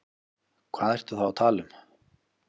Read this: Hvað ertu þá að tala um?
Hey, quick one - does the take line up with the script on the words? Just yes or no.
yes